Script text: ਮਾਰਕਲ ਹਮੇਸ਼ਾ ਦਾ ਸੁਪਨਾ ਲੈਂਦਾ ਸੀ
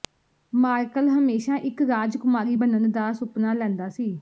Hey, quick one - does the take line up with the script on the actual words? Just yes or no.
no